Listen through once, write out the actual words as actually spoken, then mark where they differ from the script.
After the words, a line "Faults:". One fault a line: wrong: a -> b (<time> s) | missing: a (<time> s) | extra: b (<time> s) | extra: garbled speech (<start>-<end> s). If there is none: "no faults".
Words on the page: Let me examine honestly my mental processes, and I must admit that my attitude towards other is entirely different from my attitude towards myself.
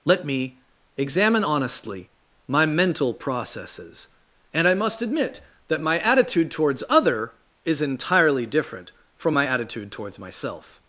Let me examine honestly my mental processes, and I must admit that my attitude towards other is entirely different from my attitude towards myself.
Faults:
no faults